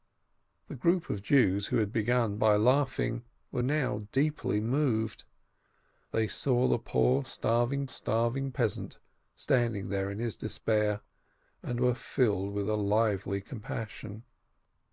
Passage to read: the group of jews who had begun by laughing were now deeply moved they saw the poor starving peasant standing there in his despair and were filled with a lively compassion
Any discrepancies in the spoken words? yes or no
yes